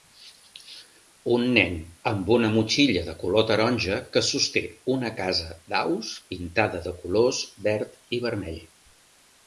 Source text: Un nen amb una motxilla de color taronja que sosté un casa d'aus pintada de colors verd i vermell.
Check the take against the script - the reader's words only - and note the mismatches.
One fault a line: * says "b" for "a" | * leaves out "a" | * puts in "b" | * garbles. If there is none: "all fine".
* says "una" for "un"